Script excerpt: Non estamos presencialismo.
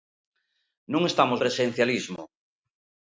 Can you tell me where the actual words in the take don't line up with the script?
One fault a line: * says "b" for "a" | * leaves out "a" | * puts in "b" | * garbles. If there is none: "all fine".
all fine